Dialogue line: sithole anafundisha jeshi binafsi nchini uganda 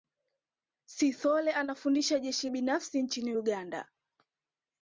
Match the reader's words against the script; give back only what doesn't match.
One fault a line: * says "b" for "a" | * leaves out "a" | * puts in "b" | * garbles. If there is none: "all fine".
all fine